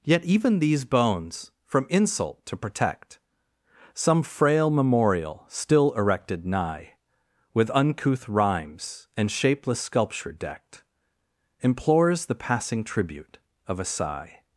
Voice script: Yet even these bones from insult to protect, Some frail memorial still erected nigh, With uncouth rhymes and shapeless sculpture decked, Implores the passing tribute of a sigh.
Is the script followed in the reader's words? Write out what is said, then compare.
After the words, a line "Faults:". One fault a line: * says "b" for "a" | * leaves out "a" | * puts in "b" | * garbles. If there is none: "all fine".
Yet even these bones from insult to protect, Some frail memorial still erected nigh, With uncouth rhymes and shapeless sculpture decked, Implores the passing tribute of a sigh.
Faults:
all fine